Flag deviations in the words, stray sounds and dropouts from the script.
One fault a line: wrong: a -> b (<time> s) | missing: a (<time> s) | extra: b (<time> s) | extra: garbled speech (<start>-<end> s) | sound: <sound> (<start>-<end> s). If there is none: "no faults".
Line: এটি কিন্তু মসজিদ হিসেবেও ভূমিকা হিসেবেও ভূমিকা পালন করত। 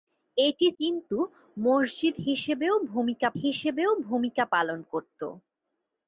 no faults